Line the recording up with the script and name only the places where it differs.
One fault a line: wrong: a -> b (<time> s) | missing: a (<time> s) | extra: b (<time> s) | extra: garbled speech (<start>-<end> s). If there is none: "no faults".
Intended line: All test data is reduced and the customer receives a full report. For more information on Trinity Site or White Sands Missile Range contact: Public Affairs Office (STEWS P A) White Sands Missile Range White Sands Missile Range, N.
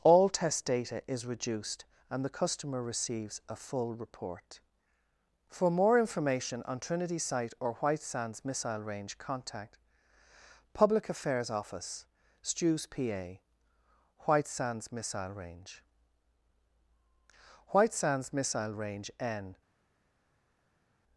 no faults